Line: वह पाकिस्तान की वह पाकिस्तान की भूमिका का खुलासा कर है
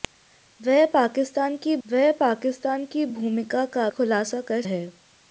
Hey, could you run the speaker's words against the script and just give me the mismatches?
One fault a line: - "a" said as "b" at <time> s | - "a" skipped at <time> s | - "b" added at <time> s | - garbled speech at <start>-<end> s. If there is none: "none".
none